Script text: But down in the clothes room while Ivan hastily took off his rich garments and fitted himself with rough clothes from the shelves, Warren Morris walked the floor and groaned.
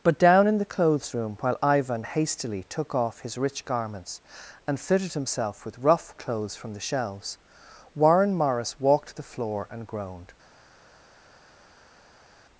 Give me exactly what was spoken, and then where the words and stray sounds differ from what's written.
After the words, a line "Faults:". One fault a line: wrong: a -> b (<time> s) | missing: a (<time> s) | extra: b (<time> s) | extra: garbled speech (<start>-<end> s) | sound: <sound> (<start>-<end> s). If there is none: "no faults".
But down in the clothes room while Ivan hastily took off his rich garments and fitted himself with rough clothes from the shelves, Warren Morris walked the floor and groaned.
Faults:
no faults